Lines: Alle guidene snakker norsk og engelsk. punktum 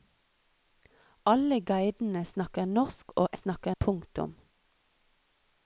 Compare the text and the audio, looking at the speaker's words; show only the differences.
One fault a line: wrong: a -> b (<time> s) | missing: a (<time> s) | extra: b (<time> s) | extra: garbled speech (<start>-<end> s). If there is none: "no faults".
wrong: engelsk -> snakker (3.3 s)